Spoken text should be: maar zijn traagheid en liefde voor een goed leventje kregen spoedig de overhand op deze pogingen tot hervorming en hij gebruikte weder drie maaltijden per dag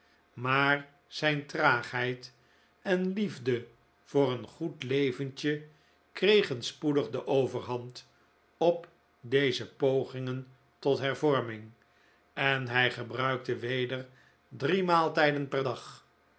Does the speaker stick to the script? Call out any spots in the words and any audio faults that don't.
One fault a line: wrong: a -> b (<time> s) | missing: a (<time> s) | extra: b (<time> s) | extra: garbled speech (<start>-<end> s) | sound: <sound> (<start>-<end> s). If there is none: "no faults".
no faults